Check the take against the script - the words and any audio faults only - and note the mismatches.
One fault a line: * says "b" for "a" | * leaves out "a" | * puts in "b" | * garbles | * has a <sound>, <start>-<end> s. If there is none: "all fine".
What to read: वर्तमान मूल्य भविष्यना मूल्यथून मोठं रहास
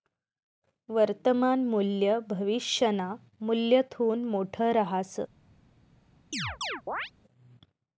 * has a chirp, 6.3-7.1 s